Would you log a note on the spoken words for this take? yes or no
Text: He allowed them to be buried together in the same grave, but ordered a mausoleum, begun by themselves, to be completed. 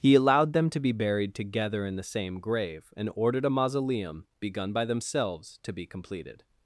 yes